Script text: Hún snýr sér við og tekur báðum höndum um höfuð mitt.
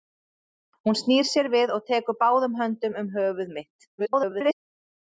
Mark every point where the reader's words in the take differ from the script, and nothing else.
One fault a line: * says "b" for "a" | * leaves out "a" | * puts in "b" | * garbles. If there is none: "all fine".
* garbles